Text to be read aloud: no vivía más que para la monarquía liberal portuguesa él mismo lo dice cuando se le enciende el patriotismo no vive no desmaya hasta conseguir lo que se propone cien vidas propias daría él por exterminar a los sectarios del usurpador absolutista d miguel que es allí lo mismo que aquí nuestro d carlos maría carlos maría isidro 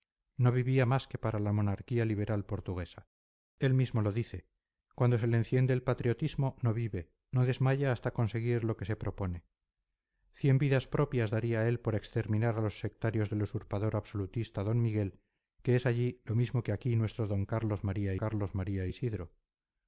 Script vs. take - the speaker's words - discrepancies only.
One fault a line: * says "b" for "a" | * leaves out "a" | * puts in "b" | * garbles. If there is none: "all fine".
all fine